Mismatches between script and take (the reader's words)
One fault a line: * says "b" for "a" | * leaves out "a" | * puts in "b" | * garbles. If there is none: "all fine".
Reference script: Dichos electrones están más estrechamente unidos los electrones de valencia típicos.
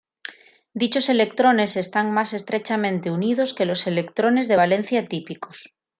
* puts in "que"